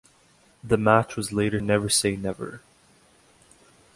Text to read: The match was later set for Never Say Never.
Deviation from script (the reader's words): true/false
true